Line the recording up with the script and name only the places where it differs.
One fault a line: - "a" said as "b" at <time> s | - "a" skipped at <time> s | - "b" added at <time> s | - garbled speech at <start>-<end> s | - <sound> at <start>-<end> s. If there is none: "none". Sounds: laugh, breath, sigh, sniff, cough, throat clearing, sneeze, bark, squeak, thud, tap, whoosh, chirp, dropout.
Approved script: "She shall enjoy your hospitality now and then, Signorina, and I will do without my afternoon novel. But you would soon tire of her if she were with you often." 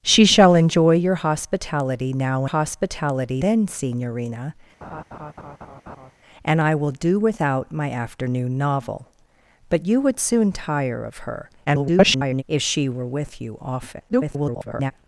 - "and" said as "hospitality" at 2.4 s
- laugh at 4.8-6.1 s
- garbled speech at 11.6-12.4 s
- garbled speech at 14.1-14.9 s